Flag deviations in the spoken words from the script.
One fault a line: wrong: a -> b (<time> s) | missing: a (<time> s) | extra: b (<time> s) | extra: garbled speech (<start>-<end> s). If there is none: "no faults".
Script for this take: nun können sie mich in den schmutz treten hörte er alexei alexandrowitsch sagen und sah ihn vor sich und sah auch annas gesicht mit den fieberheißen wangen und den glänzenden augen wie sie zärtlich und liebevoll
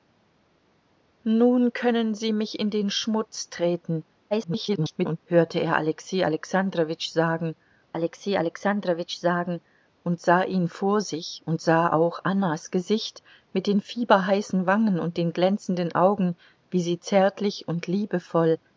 extra: garbled speech (4.3-5.2 s)
extra: alexei alexandrowitsch sagen (7.9 s)